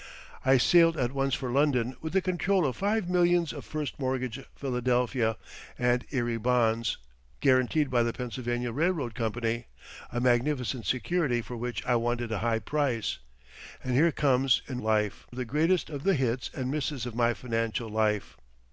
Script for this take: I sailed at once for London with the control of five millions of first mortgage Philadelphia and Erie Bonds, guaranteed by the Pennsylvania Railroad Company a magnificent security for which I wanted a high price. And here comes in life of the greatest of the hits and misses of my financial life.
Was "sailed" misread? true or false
false